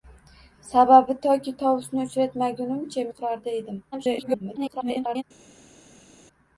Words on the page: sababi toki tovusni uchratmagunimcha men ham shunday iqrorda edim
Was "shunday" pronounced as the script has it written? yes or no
no